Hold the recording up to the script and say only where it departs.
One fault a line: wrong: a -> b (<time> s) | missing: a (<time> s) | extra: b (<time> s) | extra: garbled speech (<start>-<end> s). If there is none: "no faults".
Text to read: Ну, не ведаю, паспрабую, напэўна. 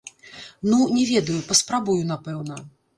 no faults